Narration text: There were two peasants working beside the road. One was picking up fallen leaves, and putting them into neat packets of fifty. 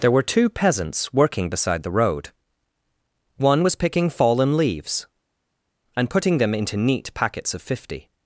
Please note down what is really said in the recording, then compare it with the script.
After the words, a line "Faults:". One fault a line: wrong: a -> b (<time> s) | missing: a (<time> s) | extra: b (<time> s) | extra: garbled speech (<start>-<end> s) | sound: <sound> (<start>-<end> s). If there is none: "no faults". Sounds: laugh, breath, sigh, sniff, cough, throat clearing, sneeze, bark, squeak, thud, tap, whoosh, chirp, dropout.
There were two peasants working beside the road. One was picking fallen leaves, and putting them into neat packets of fifty.
Faults:
missing: up (4.1 s)